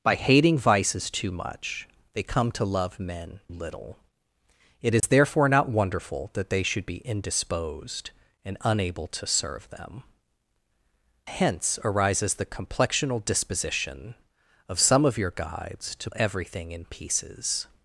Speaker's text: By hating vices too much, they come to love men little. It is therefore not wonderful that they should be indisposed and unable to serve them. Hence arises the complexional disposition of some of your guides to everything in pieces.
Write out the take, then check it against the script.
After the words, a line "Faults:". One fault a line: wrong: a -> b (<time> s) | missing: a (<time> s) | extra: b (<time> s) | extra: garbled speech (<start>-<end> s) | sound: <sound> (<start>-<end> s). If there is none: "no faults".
By hating vices too much, they come to love men little. It is therefore not wonderful that they should be indisposed and unable to serve them. Hence arises the complexional disposition of some of your guides to everything in pieces.
Faults:
sound: dropout (5.0-5.0 s)